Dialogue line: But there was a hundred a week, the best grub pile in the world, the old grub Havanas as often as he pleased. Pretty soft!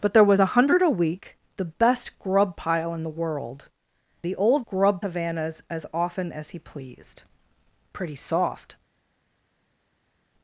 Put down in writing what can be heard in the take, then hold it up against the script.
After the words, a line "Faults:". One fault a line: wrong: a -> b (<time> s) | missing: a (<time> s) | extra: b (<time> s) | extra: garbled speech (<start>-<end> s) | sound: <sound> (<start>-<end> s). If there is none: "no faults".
But there was a hundred a week, the best grub pile in the world, the old grub Havanas as often as he pleased. Pretty soft!
Faults:
no faults